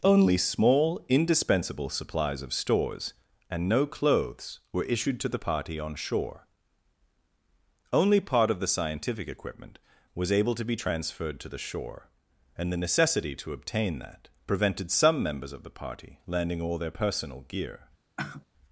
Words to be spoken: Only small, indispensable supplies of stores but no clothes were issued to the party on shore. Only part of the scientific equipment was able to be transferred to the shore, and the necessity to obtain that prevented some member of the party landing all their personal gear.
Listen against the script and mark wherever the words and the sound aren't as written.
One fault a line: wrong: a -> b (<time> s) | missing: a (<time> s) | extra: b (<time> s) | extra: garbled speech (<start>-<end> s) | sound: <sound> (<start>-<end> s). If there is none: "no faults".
wrong: but -> and (3.5 s)
wrong: member -> members (15.2 s)
sound: sigh (18.2-18.5 s)